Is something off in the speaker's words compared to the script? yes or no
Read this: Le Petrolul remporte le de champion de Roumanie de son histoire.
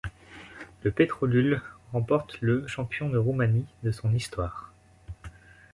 yes